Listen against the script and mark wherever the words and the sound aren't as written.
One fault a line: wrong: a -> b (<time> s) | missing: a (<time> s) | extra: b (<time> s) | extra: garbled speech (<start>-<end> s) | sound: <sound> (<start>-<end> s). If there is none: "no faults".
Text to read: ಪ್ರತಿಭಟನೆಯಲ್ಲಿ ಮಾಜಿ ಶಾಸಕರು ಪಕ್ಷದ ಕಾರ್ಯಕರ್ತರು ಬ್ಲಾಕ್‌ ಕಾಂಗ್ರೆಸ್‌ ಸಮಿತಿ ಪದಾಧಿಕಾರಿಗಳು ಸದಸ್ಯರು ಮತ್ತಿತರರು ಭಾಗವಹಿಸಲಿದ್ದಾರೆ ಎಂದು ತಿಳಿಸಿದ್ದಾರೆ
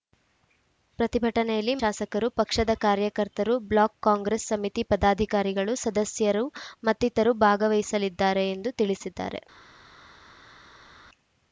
missing: ಮಾಜಿ (1.8 s)